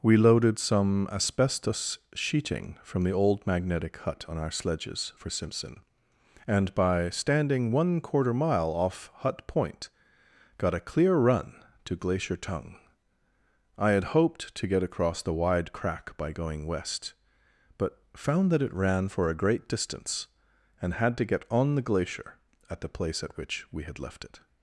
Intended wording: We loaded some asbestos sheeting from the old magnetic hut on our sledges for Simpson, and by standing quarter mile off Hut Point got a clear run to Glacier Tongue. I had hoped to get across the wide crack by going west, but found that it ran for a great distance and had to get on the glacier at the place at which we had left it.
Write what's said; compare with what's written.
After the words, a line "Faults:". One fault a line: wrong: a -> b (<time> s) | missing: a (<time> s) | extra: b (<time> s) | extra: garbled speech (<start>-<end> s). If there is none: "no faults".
We loaded some asbestos sheeting from the old magnetic hut on our sledges for Simpson, and by standing one quarter mile off Hut Point got a clear run to Glacier Tongue. I had hoped to get across the wide crack by going west, but found that it ran for a great distance and had to get on the glacier at the place at which we had left it.
Faults:
extra: one (7.7 s)